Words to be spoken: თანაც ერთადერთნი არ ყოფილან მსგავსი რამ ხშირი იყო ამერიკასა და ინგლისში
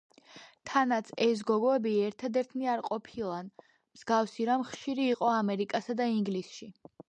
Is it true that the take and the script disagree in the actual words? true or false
true